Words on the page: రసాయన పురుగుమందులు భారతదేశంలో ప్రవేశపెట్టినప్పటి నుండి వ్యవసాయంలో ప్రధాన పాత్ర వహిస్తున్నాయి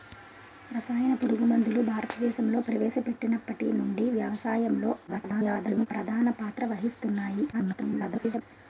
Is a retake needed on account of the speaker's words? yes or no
yes